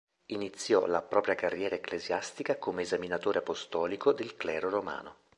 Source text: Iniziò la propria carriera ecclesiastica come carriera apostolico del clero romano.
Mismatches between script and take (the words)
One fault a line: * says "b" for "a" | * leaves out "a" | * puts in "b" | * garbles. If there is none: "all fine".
* says "esaminatore" for "carriera"